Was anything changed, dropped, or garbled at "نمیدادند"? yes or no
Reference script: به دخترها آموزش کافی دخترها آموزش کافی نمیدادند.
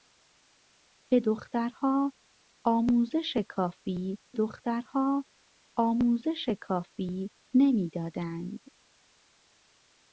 no